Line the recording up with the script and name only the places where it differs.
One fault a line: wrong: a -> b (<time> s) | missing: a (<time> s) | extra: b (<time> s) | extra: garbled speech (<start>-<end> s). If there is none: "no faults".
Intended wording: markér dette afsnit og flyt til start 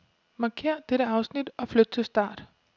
no faults